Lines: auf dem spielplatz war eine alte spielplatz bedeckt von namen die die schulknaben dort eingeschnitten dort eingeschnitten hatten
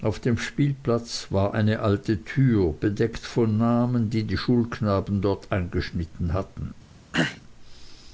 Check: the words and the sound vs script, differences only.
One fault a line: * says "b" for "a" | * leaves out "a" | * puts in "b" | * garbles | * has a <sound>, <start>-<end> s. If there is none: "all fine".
* says "tür" for "spielplatz"
* leaves out "dort eingeschnitten"
* has a throat clearing, 7.1-7.4 s